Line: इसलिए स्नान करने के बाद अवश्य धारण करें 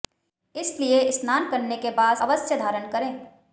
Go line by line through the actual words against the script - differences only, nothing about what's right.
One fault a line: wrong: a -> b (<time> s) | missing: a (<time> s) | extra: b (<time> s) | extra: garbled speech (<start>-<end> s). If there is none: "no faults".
no faults